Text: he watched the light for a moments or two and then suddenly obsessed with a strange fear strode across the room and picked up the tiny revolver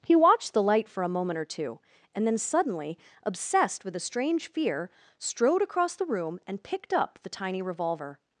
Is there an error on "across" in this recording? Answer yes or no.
no